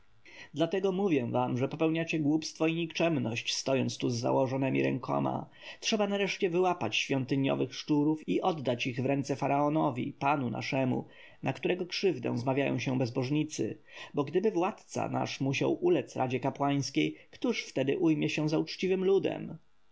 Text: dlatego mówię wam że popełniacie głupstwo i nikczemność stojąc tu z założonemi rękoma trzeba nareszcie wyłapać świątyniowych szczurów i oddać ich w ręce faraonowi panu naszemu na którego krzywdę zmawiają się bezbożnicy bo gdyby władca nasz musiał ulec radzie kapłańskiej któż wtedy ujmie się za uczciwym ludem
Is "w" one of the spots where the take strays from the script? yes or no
no